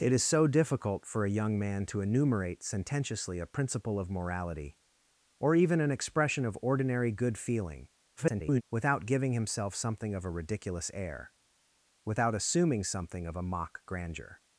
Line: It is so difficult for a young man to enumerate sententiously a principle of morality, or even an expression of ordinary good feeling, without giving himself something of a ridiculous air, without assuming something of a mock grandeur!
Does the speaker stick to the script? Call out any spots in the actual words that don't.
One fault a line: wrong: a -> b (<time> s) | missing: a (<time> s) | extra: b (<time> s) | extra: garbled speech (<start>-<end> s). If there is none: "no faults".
extra: garbled speech (8.2-8.6 s)